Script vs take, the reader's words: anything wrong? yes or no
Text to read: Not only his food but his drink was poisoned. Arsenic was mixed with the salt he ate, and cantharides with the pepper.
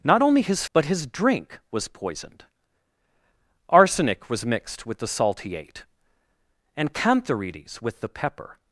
yes